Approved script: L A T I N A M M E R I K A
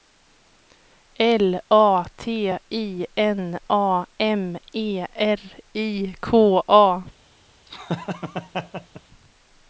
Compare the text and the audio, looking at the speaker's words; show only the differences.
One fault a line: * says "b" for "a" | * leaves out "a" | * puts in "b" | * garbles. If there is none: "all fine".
* leaves out "M"